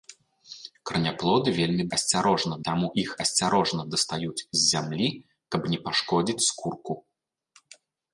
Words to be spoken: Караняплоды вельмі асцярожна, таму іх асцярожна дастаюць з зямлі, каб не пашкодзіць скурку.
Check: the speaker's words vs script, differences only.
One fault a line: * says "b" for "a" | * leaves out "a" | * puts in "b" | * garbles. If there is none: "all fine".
all fine